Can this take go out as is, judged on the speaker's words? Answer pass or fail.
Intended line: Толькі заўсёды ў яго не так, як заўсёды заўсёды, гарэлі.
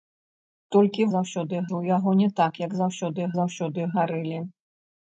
pass